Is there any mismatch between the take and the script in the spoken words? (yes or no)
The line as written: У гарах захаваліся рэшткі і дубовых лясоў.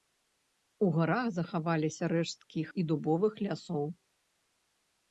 no